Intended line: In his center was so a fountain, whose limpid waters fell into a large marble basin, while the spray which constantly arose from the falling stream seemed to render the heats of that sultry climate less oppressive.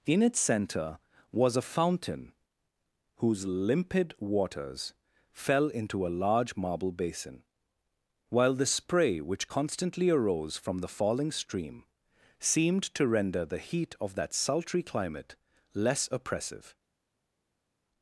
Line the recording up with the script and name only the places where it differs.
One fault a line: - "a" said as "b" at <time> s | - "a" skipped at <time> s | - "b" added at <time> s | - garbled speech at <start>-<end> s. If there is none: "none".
- "his" said as "its" at 0.2 s
- "so" skipped at 1.6 s
- "heats" said as "heat" at 13.6 s